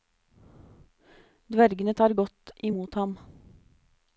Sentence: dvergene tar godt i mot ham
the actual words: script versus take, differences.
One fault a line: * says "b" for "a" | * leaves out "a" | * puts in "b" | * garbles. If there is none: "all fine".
all fine